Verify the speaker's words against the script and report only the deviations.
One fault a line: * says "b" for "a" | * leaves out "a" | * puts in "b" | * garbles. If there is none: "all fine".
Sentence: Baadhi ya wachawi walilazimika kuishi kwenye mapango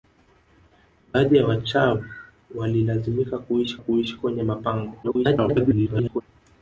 * puts in "kuishi"
* garbles